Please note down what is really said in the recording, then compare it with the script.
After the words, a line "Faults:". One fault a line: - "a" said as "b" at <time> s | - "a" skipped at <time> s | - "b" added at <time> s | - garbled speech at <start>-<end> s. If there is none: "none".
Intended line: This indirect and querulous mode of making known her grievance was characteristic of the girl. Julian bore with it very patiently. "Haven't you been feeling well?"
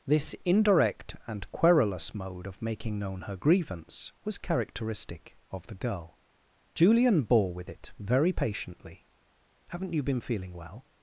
This indirect and querulous mode of making known her grievance was characteristic of the girl. Julian bore with it very patiently. "Haven't you been feeling well?"
Faults:
none